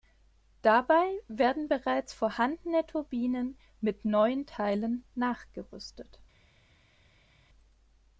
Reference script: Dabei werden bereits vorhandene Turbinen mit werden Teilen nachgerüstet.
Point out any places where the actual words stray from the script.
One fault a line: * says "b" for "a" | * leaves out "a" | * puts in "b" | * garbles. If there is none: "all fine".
* says "neuen" for "werden"